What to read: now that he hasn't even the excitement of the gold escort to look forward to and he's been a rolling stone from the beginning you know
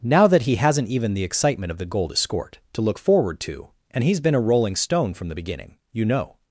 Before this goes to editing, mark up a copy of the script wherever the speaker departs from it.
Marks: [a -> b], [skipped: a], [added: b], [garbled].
now that he hasn't even the excitement of the gold escort to look forward to and he's been a rolling stone from the beginning you know